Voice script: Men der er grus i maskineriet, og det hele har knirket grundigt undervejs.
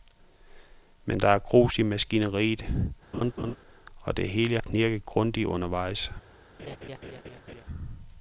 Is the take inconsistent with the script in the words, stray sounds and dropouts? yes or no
yes